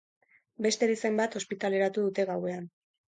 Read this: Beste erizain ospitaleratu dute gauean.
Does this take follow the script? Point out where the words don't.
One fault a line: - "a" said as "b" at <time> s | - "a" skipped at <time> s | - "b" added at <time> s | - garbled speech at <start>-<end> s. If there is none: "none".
- "bat" added at 1.2 s